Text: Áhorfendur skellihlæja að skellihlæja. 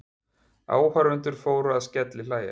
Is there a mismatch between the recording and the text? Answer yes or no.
yes